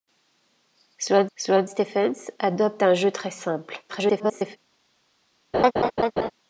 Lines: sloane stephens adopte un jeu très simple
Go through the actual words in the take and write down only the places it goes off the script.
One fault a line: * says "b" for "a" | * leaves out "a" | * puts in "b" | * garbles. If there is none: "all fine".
* puts in "sloane"
* garbles